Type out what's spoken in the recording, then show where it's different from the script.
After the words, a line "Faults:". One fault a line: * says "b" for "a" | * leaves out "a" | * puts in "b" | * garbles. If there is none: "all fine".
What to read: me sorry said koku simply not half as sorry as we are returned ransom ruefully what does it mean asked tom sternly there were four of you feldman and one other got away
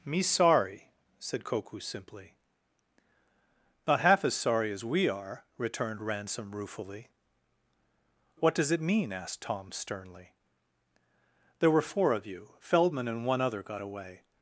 me sorry said koku simply not half as sorry as we are returned ransom ruefully what does it mean asked tom sternly there were four of you feldman and one other got away
Faults:
all fine